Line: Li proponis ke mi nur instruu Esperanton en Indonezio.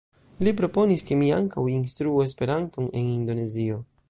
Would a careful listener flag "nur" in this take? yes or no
yes